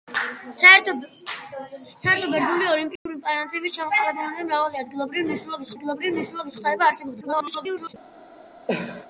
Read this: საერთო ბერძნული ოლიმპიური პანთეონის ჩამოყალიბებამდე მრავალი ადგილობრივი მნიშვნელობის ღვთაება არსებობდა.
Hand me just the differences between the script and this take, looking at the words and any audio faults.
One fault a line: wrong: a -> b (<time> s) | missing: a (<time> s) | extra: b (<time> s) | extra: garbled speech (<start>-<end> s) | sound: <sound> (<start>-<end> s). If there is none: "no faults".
sound: dropout (3.0-3.1 s)
extra: ადგილობრივი მნიშვნელობის (5.7 s)
extra: garbled speech (7.2-7.9 s)
sound: cough (8.7-9.1 s)